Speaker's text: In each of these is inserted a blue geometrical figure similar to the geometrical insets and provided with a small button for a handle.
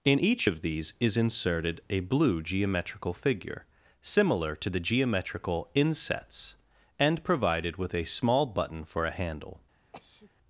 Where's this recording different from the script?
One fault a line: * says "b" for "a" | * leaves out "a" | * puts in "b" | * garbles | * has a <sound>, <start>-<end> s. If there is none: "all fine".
* has a sneeze, 9.9-10.3 s